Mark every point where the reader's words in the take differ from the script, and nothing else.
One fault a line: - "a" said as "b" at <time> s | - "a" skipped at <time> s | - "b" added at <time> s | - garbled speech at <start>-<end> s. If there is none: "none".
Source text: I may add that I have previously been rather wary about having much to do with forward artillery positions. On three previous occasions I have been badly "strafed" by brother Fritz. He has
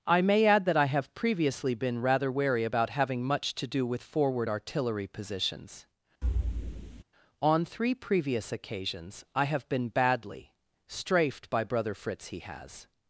none